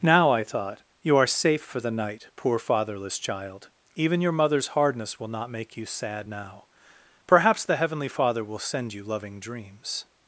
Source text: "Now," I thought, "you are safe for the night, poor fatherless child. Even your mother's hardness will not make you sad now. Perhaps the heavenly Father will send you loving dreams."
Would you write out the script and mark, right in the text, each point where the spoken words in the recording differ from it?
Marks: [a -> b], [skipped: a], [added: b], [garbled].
"Now," I thought, "you are safe for the night, poor fatherless child. Even your mother's hardness will not make you sad now. Perhaps the heavenly Father will send you loving dreams."